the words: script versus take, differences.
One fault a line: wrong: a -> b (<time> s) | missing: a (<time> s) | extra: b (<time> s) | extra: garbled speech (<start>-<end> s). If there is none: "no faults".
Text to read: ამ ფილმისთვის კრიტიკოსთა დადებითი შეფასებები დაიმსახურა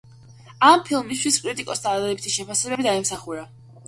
no faults